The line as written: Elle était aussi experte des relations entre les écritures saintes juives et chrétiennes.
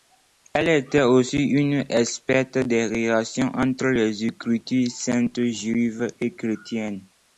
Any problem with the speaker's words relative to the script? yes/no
yes